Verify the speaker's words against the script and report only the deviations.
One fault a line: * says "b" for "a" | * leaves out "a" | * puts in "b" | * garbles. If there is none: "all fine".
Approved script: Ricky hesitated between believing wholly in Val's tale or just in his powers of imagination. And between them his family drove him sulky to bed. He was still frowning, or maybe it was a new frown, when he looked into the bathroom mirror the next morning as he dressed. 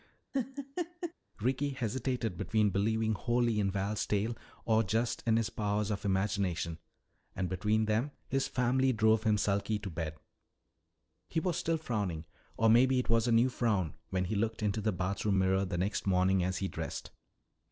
all fine